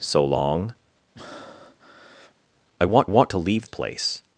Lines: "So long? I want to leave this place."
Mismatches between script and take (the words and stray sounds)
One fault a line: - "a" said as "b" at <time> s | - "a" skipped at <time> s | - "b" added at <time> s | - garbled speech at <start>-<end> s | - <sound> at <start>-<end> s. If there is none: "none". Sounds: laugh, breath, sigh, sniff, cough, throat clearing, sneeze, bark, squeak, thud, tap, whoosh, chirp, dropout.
- breath at 1.2-2.4 s
- "want" added at 3.0 s
- "this" skipped at 3.7 s